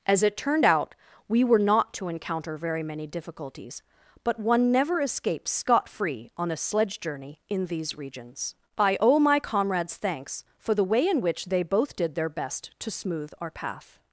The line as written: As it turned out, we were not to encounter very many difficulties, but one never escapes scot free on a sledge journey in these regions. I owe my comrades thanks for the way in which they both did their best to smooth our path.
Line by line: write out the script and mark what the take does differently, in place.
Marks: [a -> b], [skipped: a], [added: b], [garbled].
As it turned out, we were not to encounter very many difficulties, but one never escapes scot free on a sledge journey in these regions. I owe my comrades thanks for the way in which they both did their best to smooth our path.